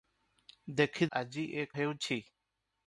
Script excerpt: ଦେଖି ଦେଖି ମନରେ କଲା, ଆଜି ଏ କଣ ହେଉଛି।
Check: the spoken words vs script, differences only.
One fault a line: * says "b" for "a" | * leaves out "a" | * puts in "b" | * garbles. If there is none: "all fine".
* leaves out "ଦେଖି ମନରେ କଲା"
* leaves out "କଣ"